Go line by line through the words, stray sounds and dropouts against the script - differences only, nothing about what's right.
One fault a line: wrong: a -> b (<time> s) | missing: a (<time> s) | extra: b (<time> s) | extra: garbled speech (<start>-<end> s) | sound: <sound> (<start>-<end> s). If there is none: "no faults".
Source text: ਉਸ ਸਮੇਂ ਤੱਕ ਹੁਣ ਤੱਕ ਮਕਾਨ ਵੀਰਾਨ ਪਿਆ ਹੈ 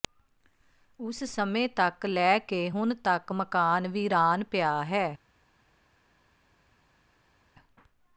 extra: ਲੈ ਕੇ (2.0 s)